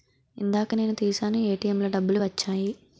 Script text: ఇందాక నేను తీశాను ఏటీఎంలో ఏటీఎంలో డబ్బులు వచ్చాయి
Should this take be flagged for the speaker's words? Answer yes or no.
yes